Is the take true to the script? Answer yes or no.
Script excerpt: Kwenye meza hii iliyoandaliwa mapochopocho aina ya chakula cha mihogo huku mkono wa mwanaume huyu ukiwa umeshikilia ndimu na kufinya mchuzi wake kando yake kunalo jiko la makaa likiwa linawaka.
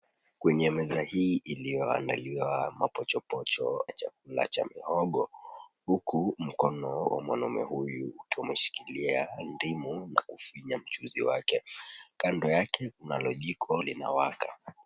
no